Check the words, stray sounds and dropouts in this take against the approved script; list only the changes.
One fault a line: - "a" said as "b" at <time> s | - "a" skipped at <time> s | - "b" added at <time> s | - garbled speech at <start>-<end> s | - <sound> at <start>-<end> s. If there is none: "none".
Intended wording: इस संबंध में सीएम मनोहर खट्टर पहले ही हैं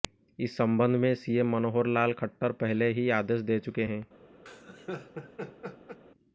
- "लाल" added at 1.9 s
- "आदेश दे चुके" added at 3.2 s
- laugh at 4.5-6.0 s